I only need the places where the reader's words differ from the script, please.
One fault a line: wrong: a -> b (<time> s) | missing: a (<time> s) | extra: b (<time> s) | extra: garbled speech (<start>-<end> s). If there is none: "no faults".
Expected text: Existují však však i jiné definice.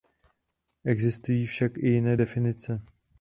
missing: však (1.8 s)